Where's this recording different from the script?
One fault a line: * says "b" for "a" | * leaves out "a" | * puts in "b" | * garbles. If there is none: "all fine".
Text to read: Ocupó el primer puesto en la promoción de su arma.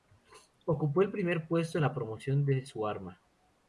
all fine